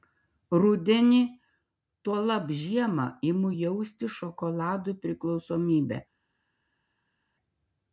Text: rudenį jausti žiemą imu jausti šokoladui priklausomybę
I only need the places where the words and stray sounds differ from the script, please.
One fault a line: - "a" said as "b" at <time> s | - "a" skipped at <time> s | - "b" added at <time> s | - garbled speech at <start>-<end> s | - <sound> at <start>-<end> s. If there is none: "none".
- "jausti" said as "tuolab" at 2.1 s